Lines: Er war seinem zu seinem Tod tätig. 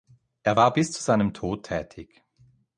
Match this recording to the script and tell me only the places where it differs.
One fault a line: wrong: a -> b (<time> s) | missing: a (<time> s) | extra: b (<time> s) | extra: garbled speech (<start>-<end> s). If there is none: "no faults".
wrong: seinem -> bis (0.7 s)